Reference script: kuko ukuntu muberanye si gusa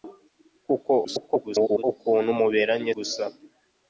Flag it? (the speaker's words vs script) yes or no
yes